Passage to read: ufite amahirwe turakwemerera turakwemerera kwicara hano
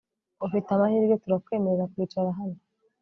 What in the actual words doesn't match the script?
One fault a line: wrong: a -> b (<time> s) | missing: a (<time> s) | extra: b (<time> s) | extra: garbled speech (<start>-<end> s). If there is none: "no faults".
missing: turakwemerera (1.9 s)